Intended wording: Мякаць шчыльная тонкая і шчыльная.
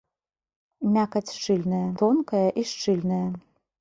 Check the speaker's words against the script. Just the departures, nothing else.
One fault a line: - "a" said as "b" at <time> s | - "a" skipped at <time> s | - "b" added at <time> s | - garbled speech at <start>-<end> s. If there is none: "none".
none